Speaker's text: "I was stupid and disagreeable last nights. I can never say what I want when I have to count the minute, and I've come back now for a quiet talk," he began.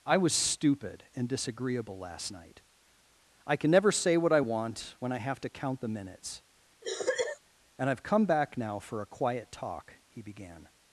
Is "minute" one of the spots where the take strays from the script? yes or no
yes